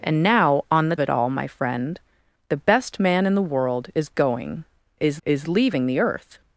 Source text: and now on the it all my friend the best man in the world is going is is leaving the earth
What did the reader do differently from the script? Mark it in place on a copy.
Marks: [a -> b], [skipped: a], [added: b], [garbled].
and now on the it all my friend the best man in the world is going is is leaving the earth